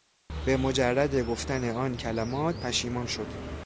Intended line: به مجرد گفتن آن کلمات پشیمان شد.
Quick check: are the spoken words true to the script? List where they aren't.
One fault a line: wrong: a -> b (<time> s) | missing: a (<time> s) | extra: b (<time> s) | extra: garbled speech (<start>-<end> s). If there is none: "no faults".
no faults